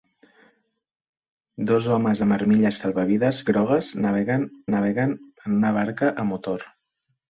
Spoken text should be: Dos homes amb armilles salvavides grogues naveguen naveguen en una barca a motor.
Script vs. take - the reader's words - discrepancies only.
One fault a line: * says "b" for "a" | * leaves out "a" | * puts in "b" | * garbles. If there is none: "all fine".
all fine